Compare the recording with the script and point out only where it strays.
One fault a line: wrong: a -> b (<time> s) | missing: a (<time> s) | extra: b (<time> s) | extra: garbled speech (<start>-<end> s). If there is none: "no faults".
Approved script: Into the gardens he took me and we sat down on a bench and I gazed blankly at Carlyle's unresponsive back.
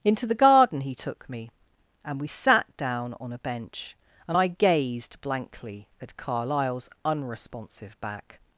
wrong: gardens -> garden (0.3 s)